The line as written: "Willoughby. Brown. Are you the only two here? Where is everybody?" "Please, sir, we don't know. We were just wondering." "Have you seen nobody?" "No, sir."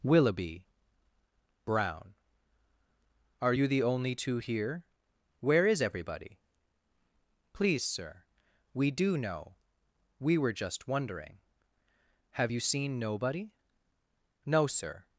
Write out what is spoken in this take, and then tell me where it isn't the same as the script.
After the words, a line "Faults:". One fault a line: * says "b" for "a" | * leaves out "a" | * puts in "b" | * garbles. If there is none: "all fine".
"Willoughby. Brown. Are you the only two here? Where is everybody?" "Please, sir, we do know. We were just wondering." "Have you seen nobody?" "No, sir."
Faults:
* says "do" for "don't"